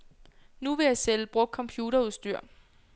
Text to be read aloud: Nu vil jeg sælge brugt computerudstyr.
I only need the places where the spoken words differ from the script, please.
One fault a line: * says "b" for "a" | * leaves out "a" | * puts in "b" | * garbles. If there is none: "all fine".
all fine